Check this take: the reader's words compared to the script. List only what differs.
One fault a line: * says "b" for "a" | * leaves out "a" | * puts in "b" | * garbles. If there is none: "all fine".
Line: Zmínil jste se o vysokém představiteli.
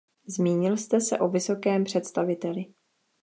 all fine